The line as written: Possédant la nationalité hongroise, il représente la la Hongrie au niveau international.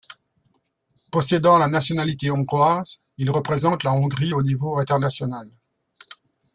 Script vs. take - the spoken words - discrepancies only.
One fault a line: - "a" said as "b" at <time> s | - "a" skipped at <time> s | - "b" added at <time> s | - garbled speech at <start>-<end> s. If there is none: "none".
- "la" skipped at 3.9 s